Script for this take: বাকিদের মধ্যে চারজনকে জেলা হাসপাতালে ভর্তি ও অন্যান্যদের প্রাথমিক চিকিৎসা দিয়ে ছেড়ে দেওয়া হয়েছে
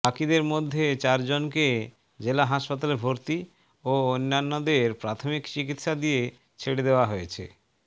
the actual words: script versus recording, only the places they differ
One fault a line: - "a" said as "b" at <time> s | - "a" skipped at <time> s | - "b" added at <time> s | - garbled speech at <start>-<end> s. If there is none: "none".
none